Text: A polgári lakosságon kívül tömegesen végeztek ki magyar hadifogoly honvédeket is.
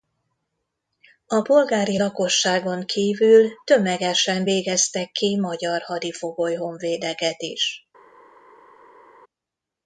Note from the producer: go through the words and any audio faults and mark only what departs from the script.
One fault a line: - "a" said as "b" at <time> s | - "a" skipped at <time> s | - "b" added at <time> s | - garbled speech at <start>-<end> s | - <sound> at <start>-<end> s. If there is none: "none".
none